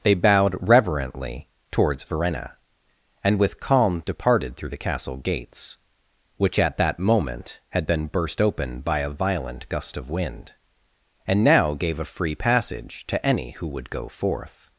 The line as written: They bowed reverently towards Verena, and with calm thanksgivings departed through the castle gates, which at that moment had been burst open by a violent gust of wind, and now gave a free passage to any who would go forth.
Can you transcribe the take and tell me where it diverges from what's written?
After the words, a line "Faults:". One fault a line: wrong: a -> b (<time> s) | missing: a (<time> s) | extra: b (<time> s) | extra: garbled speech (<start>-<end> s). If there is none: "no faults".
They bowed reverently towards Verena, and with calm departed through the castle gates, which at that moment had been burst open by a violent gust of wind, and now gave a free passage to any who would go forth.
Faults:
missing: thanksgivings (4.0 s)